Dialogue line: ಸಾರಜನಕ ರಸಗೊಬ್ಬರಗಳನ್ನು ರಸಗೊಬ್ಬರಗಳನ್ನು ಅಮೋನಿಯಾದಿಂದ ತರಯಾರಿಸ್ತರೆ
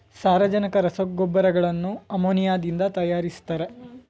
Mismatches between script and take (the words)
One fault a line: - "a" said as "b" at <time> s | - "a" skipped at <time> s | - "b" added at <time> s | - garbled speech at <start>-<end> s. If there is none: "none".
- "ರಸಗೊಬ್ಬರಗಳನ್ನು" skipped at 1.9 s